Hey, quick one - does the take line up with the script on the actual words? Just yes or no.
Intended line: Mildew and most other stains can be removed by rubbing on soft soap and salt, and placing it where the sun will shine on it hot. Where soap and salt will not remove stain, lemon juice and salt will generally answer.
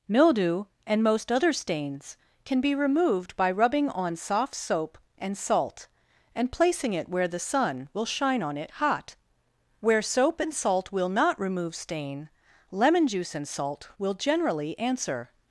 yes